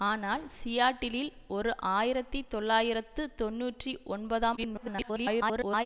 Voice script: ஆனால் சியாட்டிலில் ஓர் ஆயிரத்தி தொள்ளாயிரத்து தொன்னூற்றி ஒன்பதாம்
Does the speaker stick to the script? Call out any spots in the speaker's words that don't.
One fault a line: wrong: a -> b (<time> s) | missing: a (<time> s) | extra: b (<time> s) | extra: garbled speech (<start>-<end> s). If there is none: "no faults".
extra: garbled speech (4.6-5.9 s)